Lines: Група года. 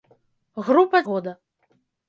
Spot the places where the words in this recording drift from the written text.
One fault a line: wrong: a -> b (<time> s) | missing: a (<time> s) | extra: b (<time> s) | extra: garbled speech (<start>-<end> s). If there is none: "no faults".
no faults